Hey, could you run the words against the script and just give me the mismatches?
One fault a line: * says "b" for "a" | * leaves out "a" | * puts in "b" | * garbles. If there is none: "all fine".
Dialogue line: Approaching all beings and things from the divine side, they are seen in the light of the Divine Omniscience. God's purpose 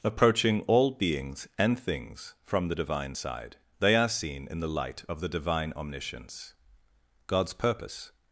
all fine